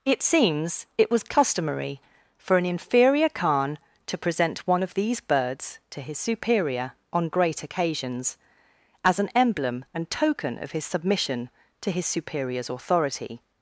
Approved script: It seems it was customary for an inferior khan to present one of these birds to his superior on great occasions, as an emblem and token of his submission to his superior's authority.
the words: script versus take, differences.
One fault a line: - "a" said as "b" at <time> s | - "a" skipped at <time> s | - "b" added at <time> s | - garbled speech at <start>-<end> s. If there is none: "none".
none